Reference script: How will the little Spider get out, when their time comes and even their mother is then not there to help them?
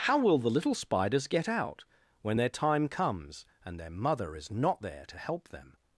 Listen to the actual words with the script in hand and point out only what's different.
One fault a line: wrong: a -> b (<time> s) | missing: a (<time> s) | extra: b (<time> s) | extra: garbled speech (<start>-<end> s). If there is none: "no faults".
wrong: Spider -> Spiders (0.7 s)
missing: even (3.8 s)
missing: then (4.5 s)